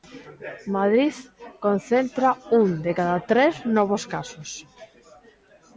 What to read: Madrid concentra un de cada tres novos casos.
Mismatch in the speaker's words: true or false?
false